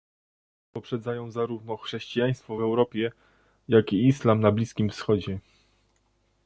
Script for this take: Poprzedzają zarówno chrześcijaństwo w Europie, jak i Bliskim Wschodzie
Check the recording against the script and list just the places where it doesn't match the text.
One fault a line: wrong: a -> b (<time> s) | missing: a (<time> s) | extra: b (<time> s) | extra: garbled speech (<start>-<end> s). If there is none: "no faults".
extra: islam na (4.1 s)